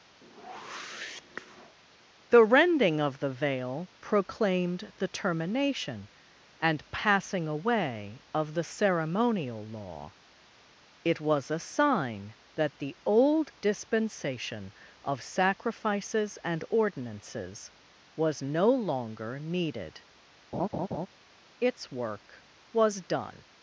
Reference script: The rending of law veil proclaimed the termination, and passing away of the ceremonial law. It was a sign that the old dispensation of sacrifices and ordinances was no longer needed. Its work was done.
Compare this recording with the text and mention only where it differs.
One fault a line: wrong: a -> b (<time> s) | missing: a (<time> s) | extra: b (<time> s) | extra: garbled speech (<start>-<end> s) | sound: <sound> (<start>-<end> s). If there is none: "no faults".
sound: whoosh (0.2-1.8 s)
wrong: law -> the (3.2 s)
sound: laugh (20.5-21.1 s)